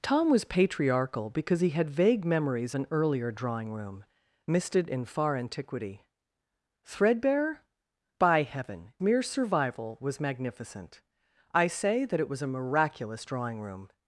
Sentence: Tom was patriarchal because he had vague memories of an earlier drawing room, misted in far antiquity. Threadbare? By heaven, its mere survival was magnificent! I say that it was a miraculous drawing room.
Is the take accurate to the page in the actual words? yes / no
no